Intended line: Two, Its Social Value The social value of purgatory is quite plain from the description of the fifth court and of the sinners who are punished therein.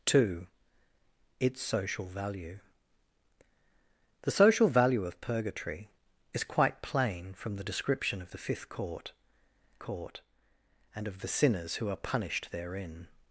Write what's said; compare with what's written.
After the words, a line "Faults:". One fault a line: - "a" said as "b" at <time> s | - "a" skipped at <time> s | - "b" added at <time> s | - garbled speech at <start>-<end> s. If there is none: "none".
Two, Its Social Value The social value of purgatory is quite plain from the description of the fifth court court and of the sinners who are punished therein.
Faults:
- "court" added at 9.8 s